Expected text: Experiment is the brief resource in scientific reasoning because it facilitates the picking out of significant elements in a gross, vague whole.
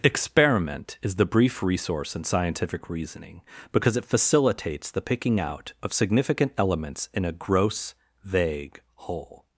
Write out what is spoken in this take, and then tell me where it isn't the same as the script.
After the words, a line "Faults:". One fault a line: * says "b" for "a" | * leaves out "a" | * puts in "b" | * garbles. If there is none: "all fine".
Experiment is the brief resource in scientific reasoning because it facilitates the picking out of significant elements in a gross, vague whole.
Faults:
all fine